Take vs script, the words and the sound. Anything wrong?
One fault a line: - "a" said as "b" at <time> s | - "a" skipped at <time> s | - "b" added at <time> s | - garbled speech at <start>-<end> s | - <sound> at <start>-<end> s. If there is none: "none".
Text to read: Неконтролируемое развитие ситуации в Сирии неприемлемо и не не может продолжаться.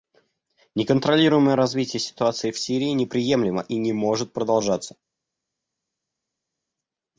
- "не" skipped at 3.9 s